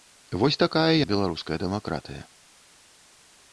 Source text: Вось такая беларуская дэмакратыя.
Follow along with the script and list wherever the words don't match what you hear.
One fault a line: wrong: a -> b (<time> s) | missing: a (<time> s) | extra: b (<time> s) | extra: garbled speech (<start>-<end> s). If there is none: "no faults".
no faults